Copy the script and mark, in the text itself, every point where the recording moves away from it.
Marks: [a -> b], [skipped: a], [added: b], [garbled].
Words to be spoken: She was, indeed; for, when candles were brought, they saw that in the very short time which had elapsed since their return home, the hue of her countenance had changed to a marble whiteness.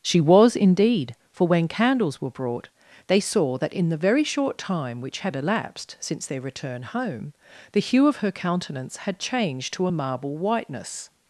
She was, indeed; for, when candles were brought, they saw that in the very short time which had elapsed since their return home, the hue of her countenance had changed to a marble whiteness.